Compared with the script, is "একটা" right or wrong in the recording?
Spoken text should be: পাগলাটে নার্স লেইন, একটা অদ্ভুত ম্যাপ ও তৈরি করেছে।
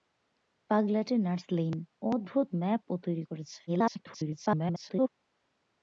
wrong